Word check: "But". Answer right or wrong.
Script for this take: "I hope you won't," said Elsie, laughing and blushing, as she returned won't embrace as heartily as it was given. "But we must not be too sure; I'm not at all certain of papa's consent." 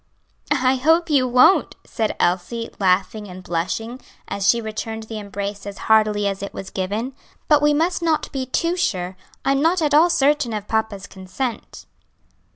right